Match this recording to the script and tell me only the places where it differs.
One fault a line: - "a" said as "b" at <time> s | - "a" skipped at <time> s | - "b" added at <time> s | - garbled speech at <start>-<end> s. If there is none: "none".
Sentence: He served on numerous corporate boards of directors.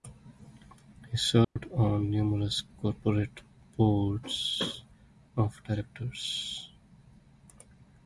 none